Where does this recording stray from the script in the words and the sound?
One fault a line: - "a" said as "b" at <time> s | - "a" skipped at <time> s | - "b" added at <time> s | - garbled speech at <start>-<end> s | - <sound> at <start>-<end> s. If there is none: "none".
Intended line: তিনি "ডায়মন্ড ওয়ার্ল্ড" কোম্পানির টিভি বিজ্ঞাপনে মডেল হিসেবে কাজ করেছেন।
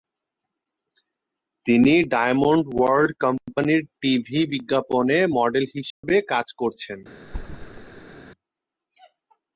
- dropout at 5.9-6.0 s
- thud at 7.2-8.2 s